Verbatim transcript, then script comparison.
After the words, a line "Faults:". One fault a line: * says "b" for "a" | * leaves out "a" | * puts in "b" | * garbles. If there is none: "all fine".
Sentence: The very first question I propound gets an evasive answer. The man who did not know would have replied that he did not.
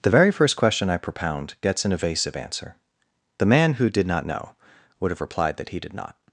The very first question I propound gets an evasive answer. The man who did not know would have replied that he did not.
Faults:
all fine